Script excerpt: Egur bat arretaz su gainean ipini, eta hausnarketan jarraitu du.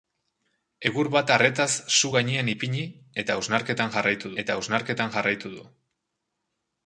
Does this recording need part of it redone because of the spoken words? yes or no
yes